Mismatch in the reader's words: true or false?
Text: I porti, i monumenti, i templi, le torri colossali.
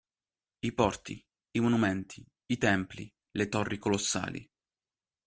false